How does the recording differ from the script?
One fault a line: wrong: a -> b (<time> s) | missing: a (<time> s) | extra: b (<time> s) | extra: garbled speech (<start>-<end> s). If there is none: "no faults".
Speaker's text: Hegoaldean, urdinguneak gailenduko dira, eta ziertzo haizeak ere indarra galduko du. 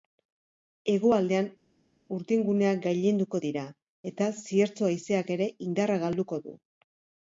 no faults